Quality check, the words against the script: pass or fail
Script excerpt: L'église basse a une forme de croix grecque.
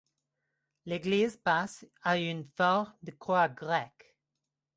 pass